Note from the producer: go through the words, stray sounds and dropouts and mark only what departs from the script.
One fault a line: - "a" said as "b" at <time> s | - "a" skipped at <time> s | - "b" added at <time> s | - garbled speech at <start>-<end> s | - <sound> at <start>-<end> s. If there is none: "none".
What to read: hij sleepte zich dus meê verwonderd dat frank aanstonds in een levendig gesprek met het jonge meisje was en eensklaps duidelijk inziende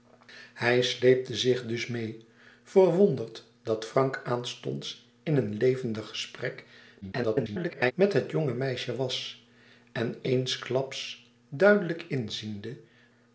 - garbled speech at 7.0-7.9 s